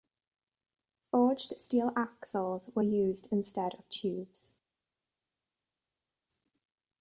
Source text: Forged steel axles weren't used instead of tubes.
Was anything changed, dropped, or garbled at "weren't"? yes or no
yes